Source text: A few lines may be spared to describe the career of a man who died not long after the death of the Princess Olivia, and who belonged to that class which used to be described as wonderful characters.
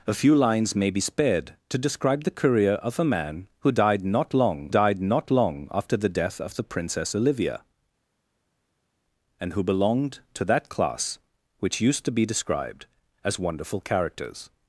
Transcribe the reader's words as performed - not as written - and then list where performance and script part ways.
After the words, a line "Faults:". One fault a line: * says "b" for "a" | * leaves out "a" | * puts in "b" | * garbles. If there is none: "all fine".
A few lines may be spared to describe the career of a man who died not long died not long after the death of the Princess Olivia, and who belonged to that class which used to be described as wonderful characters.
Faults:
* puts in "died not long"